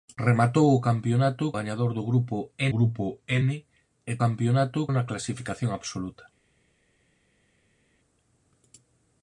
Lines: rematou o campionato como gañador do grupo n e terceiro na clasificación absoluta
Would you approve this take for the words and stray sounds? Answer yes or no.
no